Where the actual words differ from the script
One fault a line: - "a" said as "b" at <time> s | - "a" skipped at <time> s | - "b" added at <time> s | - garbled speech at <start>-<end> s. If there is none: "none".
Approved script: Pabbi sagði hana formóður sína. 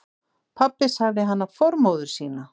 none